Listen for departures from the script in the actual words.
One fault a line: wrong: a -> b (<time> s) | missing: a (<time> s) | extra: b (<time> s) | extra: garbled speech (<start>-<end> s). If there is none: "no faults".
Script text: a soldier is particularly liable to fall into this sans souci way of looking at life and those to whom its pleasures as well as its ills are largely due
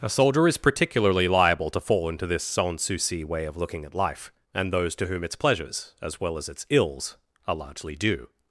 no faults